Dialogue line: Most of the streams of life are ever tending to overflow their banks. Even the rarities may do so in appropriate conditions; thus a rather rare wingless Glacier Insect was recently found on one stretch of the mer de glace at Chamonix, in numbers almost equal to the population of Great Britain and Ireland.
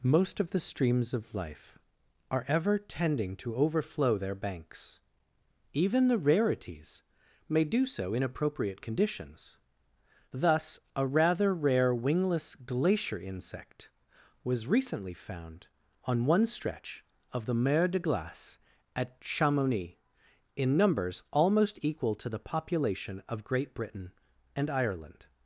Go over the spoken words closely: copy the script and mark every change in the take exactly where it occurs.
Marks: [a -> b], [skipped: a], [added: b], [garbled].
Most of the streams of life are ever tending to overflow their banks. Even the rarities may do so in appropriate conditions; thus a rather rare wingless Glacier Insect was recently found on one stretch of the mer de glace at Chamonix, in numbers almost equal to the population of Great Britain and Ireland.